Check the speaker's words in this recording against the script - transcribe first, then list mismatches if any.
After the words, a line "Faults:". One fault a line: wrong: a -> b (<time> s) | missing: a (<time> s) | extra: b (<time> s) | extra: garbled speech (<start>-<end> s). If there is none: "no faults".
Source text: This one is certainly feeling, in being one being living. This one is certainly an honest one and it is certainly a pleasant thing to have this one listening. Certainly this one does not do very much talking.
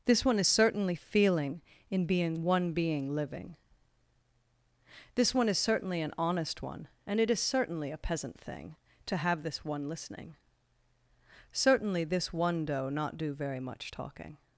This one is certainly feeling, in being one being living. This one is certainly an honest one and it is certainly a peasant thing to have this one listening. Certainly this one doe not do very much talking.
Faults:
wrong: pleasant -> peasant (8.0 s)
wrong: does -> doe (12.6 s)